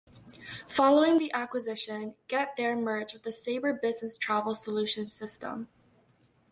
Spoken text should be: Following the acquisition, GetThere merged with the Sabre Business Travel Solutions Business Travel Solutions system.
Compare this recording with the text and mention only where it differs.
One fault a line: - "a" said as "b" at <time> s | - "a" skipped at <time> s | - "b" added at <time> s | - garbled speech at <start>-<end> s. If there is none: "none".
- "Business Travel Solutions" skipped at 5.1 s